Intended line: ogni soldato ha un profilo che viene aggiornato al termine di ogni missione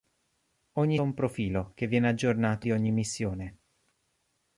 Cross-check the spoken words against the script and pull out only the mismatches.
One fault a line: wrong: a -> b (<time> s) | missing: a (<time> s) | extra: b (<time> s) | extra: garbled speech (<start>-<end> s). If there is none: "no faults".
missing: soldato (1.0 s)
missing: al termine (2.7 s)